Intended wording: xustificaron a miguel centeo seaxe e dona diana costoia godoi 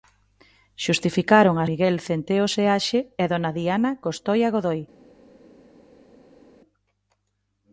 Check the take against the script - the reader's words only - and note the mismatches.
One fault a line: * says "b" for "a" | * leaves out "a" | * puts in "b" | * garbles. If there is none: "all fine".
all fine